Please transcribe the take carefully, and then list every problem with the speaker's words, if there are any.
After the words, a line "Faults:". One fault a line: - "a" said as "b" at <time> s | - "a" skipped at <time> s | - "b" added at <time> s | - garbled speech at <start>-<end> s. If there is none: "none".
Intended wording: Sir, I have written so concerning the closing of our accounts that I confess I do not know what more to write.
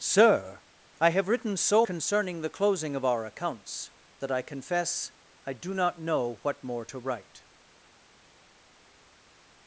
Sir, I have written so concerning the closing of our accounts that I confess I do not know what more to write.
Faults:
none